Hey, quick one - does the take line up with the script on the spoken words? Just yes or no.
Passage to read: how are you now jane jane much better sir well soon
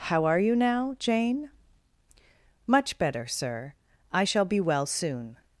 no